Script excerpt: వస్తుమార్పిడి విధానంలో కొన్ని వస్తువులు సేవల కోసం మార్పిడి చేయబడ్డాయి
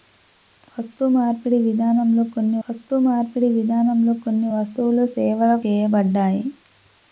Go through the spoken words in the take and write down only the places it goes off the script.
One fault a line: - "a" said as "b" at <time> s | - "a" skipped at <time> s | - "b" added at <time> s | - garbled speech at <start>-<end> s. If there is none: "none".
- "వస్తుమార్పిడి విధానంలో కొన్ని" added at 2.7 s
- "కోసం మార్పిడి" skipped at 5.5 s